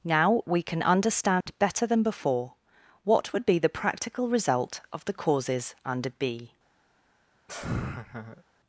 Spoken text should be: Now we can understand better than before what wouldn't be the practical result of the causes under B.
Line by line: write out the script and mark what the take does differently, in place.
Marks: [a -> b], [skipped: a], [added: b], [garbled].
Now we can understand better than before what [wouldn't -> would] be the practical result of the causes under B.